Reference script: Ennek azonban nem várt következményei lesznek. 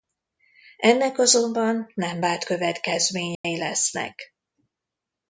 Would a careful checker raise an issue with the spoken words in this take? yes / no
no